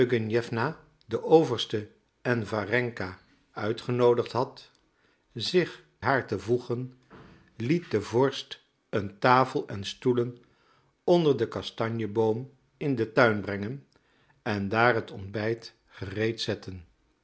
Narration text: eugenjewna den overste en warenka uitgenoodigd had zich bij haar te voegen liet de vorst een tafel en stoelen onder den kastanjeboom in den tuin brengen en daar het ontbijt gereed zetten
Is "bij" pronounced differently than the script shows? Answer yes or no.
yes